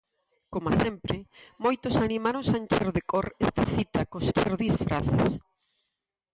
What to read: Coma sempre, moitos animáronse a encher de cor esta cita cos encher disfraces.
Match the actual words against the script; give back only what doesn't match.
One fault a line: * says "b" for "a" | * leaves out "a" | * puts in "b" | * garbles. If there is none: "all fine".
all fine